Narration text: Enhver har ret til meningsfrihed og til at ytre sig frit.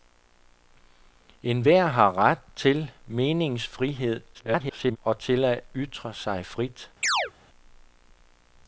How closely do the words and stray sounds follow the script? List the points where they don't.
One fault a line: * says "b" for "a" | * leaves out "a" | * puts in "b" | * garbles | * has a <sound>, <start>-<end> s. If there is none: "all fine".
* garbles
* has a chirp, 7.0-7.3 s